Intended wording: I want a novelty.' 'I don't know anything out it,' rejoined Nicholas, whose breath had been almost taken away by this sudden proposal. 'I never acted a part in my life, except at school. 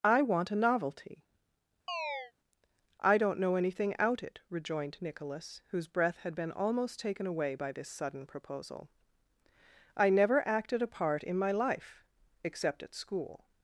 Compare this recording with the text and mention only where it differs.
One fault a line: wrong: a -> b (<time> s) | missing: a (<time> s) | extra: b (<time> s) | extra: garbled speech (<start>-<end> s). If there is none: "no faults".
no faults